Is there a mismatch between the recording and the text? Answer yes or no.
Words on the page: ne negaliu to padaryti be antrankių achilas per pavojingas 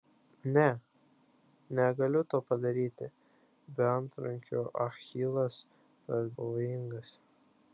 no